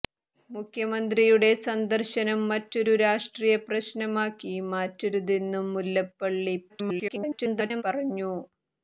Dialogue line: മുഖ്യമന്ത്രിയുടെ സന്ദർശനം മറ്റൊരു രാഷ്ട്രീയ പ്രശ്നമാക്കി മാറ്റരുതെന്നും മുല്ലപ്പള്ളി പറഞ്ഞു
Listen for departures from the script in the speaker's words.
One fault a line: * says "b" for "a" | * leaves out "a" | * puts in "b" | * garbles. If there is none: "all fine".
* garbles